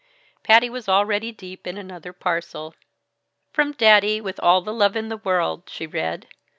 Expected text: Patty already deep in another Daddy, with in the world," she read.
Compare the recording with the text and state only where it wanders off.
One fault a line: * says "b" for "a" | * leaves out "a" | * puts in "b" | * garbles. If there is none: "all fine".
* puts in "was"
* puts in "parcel From"
* puts in "all the love"